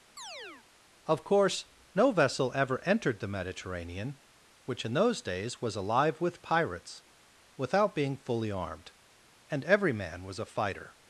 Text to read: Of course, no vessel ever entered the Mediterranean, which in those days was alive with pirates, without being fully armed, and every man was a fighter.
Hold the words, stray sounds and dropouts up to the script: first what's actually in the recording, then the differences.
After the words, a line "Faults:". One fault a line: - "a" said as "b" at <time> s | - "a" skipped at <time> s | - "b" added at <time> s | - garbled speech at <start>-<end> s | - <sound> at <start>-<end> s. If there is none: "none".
Of course, no vessel ever entered the Mediterranean, which in those days was alive with pirates, without being fully armed, and every man was a fighter.
Faults:
- chirp at 0.2-0.7 s